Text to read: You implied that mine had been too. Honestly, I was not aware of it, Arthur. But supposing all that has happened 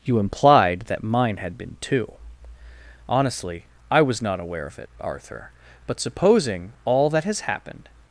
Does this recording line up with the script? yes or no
yes